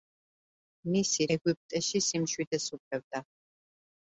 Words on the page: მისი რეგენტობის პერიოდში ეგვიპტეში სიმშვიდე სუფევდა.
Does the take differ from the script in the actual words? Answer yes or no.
yes